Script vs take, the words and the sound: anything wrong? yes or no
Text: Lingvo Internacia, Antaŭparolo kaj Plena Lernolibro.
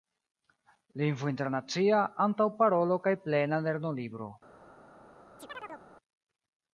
yes